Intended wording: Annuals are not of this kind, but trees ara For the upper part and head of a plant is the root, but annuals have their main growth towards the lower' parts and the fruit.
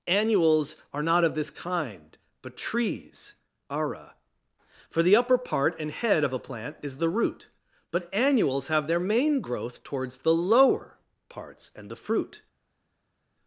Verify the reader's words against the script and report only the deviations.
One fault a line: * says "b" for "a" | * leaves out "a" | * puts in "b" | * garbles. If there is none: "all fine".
all fine